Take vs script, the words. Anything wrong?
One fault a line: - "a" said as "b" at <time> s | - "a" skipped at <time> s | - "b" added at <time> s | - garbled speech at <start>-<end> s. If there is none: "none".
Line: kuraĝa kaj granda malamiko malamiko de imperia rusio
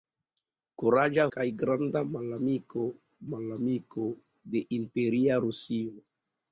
none